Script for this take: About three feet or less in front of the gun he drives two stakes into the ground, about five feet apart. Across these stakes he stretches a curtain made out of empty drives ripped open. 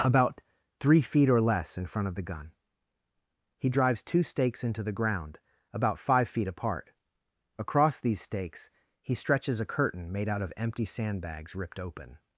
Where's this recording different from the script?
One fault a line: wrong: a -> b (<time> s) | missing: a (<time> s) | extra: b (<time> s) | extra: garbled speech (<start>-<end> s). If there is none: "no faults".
wrong: drives -> sandbags (10.8 s)